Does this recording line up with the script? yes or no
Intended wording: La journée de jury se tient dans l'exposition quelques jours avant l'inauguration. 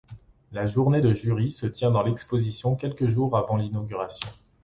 yes